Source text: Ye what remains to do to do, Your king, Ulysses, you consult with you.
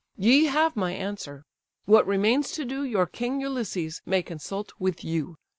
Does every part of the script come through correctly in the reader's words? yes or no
no